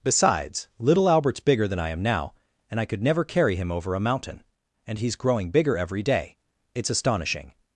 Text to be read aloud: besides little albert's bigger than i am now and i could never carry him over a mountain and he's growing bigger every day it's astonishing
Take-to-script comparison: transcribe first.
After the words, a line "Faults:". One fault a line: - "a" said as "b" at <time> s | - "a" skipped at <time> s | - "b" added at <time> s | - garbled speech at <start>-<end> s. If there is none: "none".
besides little albert's bigger than i am now and i could never carry him over a mountain and he's growing bigger every day it's astonishing
Faults:
none